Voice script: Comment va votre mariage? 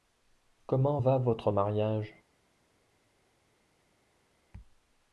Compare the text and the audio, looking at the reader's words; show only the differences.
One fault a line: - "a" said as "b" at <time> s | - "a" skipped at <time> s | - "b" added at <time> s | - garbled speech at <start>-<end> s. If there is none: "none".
none